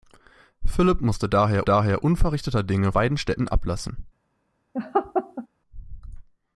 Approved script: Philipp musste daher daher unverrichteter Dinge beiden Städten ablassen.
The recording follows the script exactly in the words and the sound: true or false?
false